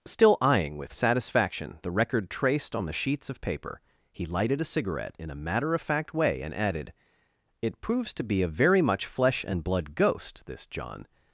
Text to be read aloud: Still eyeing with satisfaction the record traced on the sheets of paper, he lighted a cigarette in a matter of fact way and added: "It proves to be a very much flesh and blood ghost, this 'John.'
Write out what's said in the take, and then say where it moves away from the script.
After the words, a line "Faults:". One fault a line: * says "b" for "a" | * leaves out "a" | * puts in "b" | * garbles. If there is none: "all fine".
Still eyeing with satisfaction the record traced on the sheets of paper, he lighted a cigarette in a matter of fact way and added: "It proves to be a very much flesh and blood ghost, this 'John.'
Faults:
all fine